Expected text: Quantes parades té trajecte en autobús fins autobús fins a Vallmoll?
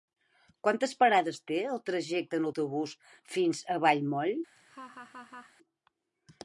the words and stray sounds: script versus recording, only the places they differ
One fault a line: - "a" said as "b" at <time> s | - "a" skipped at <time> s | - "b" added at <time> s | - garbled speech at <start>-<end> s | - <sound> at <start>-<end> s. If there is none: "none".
- "el" added at 1.7 s
- "autobús fins" skipped at 3.6 s
- laugh at 4.6-5.5 s